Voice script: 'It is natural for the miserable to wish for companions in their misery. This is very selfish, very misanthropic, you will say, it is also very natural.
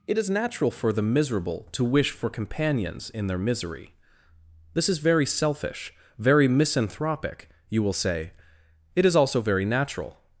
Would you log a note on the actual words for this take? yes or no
no